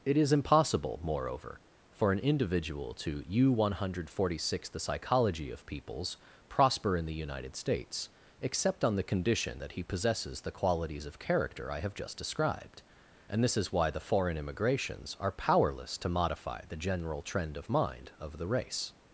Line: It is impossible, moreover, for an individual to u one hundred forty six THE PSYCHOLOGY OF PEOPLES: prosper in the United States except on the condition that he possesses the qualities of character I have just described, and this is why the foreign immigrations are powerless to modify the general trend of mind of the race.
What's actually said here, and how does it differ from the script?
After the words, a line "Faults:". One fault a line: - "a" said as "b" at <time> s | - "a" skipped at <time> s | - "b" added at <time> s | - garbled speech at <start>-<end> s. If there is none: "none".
It is impossible, moreover, for an individual to u one hundred forty six THE PSYCHOLOGY OF PEOPLES: prosper in the United States except on the condition that he possesses the qualities of character I have just described, and this is why the foreign immigrations are powerless to modify the general trend of mind of the race.
Faults:
none